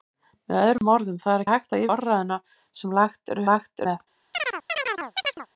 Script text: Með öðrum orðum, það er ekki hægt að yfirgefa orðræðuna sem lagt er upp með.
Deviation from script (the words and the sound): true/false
true